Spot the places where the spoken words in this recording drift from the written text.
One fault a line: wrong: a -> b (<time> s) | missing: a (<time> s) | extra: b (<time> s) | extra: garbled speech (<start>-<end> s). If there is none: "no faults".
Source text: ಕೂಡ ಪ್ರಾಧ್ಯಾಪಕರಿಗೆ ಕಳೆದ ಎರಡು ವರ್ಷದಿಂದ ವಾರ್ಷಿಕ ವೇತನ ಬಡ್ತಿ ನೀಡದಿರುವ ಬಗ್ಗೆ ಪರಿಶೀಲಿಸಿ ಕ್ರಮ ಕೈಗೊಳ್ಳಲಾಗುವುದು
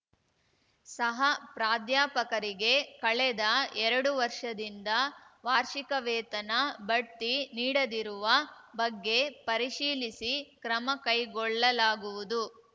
wrong: ಕೂಡ -> ಸಹ (0.9 s)